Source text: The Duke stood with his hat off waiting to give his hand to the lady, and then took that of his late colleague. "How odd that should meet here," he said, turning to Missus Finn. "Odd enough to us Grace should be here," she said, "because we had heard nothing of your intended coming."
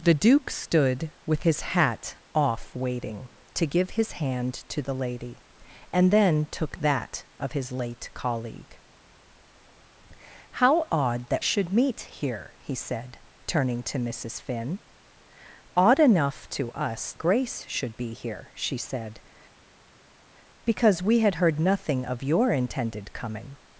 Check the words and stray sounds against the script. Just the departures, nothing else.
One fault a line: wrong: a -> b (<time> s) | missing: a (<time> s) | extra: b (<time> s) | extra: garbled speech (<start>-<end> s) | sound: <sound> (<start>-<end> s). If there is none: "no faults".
no faults